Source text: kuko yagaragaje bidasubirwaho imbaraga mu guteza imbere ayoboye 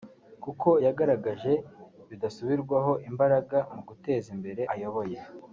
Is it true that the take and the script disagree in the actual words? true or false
false